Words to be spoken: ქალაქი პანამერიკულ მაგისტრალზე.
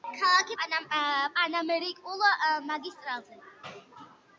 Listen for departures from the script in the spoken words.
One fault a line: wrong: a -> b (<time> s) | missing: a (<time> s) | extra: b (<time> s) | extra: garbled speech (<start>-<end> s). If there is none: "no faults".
no faults